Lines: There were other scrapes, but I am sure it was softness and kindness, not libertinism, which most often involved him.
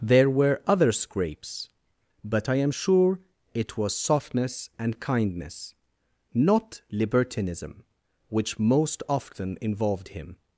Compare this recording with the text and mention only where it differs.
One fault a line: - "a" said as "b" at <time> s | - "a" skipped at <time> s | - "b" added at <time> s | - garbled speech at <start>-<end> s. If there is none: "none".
none